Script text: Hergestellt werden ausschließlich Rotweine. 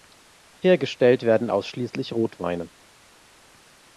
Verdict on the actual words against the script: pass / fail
pass